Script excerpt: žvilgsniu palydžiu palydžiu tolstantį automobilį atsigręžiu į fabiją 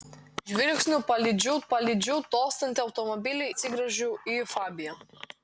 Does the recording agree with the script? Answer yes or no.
yes